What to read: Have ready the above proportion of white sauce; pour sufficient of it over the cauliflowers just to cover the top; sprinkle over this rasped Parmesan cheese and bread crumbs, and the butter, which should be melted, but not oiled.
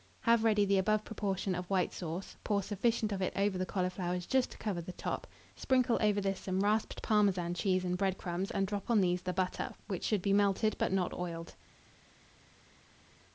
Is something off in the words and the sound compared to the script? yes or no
yes